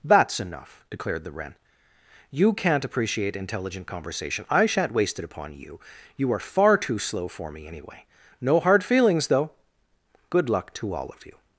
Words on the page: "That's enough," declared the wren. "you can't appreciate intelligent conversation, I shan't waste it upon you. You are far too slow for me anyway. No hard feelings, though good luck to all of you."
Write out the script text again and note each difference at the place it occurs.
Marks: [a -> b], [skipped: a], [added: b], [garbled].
"That's enough," declared the wren. "you can't appreciate intelligent conversation, I shan't waste it upon you. You are far too slow for me anyway. No hard feelings, though good luck to all of you."